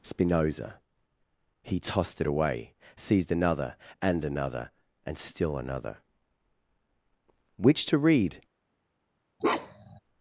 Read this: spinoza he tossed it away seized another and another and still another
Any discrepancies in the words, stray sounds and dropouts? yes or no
yes